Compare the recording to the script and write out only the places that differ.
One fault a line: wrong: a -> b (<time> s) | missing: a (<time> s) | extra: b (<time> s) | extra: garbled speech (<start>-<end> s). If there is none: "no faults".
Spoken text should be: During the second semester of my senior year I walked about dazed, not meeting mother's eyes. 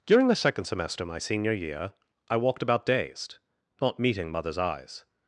missing: of (1.1 s)